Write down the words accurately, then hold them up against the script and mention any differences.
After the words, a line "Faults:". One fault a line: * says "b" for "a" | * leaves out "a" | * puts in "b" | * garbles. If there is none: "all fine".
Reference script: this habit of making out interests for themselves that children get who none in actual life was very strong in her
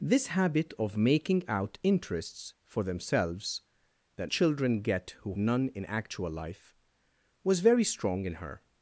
this habit of making out interests for themselves that children get who none in actual life was very strong in her
Faults:
all fine